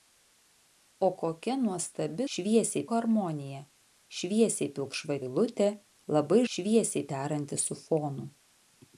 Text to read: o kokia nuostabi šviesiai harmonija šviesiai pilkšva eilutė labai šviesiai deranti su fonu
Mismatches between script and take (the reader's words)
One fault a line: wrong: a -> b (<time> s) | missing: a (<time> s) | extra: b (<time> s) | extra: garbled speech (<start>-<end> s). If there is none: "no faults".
no faults